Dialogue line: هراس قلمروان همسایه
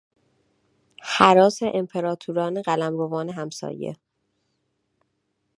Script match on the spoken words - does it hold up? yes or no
no